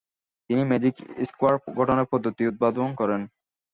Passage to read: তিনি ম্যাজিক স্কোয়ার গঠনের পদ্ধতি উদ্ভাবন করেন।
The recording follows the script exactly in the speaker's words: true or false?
true